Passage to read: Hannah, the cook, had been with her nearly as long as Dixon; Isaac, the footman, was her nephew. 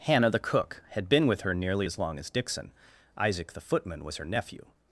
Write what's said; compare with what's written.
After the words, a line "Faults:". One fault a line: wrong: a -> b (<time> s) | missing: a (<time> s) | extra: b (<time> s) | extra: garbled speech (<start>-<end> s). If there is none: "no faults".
Hannah, the cook, had been with her nearly as long as Dixon; Isaac, the footman, was her nephew.
Faults:
no faults